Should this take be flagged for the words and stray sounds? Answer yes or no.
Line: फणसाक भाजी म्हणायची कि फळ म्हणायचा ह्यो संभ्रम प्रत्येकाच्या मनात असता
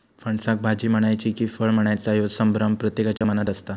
yes